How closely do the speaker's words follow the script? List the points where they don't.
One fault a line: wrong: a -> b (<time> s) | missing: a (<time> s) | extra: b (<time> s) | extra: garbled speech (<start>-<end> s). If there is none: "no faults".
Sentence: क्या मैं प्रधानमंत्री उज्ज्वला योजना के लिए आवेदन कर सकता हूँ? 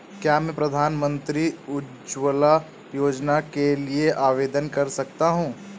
no faults